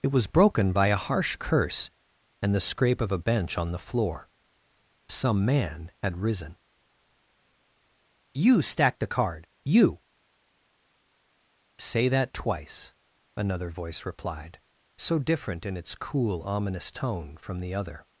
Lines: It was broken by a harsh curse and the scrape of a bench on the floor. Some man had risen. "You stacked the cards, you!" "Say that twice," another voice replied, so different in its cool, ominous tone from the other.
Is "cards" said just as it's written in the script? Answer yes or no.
no